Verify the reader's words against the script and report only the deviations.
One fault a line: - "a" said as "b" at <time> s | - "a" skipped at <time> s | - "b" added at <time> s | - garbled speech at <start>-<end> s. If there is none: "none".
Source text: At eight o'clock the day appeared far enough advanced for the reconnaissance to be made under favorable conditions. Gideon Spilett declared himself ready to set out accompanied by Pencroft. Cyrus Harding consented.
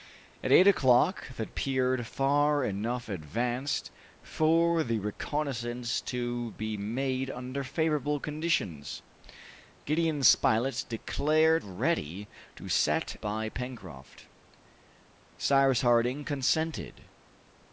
- "day" skipped at 1.4 s
- "himself" skipped at 11.6 s
- "out accompanied" skipped at 13.2 s